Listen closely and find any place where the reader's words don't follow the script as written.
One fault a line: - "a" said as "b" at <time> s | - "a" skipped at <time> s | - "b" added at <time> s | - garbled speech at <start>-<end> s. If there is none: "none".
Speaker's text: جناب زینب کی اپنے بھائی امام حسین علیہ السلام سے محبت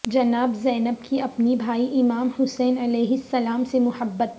none